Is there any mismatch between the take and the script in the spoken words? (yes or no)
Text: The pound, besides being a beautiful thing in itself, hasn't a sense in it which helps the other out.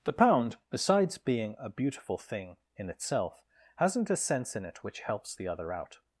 no